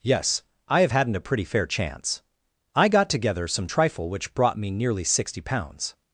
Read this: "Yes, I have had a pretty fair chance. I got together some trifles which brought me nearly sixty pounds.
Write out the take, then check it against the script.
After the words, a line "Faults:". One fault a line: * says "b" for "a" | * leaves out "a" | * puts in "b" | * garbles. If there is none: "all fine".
"Yes, I have hadn't a pretty fair chance. I got together some trifle which brought me nearly sixty pounds.
Faults:
* says "hadn't" for "had"
* says "trifle" for "trifles"